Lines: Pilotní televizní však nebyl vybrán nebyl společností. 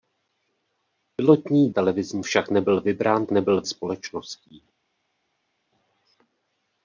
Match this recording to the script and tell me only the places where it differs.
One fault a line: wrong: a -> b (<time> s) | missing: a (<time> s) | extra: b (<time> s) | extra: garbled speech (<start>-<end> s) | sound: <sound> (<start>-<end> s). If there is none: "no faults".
no faults